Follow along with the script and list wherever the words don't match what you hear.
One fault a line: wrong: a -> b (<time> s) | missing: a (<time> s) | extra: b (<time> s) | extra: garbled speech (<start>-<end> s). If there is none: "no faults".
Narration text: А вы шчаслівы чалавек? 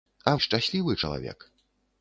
missing: вы (0.3 s)